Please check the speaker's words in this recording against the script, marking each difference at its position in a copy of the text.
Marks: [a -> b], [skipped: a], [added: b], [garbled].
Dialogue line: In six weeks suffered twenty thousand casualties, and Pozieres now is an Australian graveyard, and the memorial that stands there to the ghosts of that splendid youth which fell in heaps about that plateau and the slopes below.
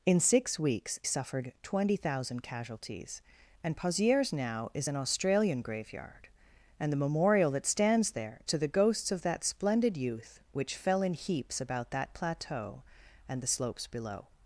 In six weeks suffered twenty thousand casualties, and Pozieres now is an Australian graveyard, and the memorial that stands there to the ghosts of that splendid youth which fell in heaps about that plateau and the slopes below.